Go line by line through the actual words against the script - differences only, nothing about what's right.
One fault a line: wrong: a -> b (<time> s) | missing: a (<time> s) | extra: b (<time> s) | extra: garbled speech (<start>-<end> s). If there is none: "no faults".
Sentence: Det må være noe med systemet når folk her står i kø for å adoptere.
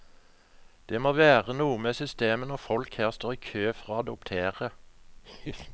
no faults